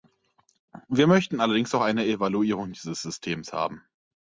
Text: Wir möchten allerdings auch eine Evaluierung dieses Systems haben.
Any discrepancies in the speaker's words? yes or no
no